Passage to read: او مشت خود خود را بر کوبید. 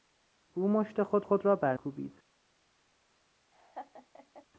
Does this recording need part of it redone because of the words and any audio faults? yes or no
yes